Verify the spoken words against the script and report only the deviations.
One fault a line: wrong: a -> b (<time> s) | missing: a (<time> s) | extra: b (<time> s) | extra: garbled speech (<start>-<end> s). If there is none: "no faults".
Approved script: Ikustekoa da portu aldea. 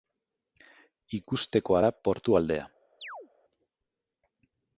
no faults